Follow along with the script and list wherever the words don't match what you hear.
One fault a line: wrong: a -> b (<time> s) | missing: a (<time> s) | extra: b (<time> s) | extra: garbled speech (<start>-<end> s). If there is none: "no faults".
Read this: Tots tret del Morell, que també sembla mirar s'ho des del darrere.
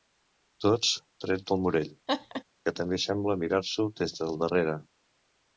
no faults